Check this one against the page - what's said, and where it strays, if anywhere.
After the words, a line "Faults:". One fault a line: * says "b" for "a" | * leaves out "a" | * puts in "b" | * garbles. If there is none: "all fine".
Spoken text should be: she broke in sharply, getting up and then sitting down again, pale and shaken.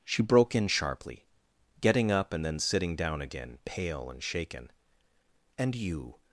she broke in sharply, getting up and then sitting down again, pale and shaken. "And you
Faults:
* puts in "And you"